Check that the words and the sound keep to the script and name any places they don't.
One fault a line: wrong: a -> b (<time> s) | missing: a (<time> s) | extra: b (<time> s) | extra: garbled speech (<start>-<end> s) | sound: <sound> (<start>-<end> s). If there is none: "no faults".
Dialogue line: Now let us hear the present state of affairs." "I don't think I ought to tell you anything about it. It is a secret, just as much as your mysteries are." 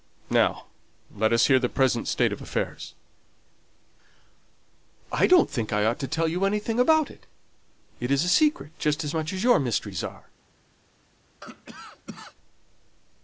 sound: cough (11.4-12.4 s)